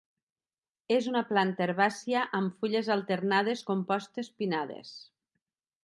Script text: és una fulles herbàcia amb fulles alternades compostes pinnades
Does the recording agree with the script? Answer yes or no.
no